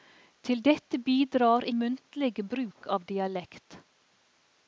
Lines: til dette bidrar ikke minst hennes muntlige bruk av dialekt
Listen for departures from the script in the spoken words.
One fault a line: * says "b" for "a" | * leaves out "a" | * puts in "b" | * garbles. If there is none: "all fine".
* leaves out "ikke minst hennes"